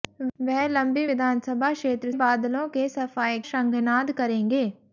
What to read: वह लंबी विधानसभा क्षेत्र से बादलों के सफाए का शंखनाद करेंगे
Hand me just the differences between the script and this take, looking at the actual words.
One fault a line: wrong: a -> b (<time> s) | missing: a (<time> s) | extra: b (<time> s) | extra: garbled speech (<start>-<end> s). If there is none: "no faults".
missing: से (2.1 s)
missing: का (3.4 s)